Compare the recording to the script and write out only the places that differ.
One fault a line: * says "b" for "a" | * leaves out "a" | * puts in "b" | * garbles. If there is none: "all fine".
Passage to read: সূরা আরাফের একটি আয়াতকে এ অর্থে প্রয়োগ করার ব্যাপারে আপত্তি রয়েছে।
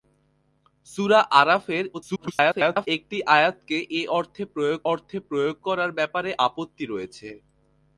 * garbles
* puts in "অর্থে প্রয়োগ"